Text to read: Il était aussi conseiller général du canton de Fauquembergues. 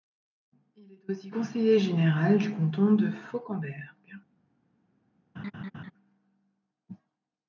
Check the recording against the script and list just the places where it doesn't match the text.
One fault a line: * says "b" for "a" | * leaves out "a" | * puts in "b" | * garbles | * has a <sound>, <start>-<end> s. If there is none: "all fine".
* says "est" for "était"
* has a laugh, 5.4-5.9 s